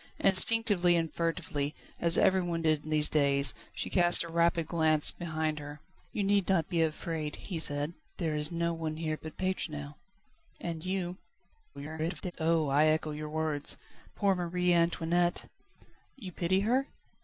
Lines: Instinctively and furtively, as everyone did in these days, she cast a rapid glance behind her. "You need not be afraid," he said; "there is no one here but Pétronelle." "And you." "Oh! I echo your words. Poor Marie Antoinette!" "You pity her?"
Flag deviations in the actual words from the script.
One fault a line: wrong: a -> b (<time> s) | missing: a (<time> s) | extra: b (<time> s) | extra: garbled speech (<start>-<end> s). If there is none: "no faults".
extra: garbled speech (11.7-12.3 s)